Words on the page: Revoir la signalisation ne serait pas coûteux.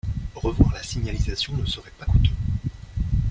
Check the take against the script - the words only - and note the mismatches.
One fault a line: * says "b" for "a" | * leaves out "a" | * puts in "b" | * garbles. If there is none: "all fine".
all fine